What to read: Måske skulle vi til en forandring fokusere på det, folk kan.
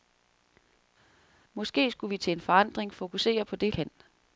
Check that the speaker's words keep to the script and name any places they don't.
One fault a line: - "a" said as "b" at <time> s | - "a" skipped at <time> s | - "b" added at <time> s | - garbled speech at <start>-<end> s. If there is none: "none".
- "folk" skipped at 3.7 s